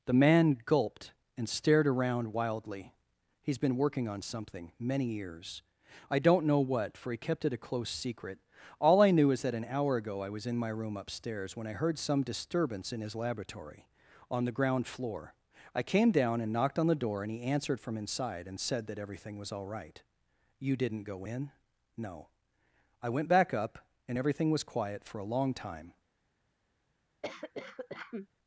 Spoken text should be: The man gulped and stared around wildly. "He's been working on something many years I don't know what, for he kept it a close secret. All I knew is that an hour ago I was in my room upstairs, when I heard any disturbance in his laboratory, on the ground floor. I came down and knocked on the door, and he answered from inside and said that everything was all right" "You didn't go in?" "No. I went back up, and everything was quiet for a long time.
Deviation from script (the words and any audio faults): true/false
true